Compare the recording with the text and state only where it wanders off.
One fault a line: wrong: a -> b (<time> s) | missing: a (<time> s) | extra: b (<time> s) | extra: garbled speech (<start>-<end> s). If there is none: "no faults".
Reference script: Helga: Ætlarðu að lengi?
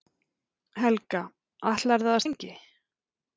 no faults